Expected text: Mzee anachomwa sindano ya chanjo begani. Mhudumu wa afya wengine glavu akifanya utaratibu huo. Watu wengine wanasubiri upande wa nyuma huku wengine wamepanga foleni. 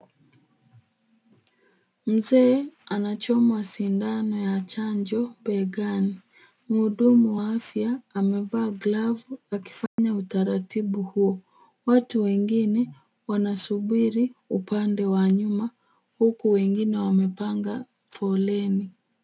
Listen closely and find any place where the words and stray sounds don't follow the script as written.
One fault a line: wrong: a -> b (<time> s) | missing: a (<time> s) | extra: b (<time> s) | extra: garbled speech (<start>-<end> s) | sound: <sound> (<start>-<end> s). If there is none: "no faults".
wrong: wengine -> amevaa (8.1 s)
sound: dropout (9.9-10.0 s)